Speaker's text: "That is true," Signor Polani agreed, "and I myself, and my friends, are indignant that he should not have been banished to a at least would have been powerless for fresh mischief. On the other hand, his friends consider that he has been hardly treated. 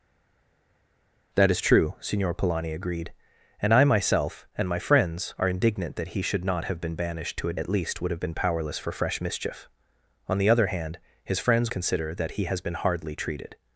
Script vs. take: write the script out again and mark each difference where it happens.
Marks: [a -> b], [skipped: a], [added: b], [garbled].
"That is true," Signor Polani agreed, "and I myself, and my friends, are indignant that he should not have been banished to a at least would have been powerless for fresh mischief. On the other hand, his friends consider that he has been hardly treated.